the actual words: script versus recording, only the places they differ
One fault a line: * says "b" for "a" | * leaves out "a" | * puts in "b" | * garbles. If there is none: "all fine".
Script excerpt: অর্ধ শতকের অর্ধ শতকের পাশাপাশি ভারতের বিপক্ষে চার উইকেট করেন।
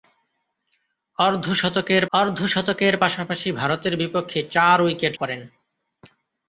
all fine